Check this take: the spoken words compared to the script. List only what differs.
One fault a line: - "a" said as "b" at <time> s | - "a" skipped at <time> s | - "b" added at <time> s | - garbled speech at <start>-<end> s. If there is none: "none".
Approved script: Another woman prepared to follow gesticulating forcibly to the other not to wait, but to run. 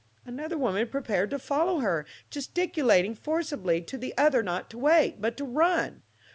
- "her" added at 1.8 s